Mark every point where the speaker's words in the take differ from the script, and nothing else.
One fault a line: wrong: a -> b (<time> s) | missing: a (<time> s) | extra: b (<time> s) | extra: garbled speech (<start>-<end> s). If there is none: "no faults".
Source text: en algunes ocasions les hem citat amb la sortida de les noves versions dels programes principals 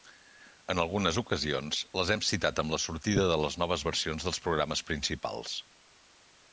no faults